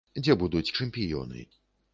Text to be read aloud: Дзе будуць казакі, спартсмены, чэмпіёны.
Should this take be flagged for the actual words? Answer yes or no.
yes